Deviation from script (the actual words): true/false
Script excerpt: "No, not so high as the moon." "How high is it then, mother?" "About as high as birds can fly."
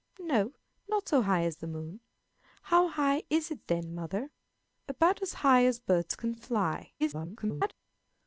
true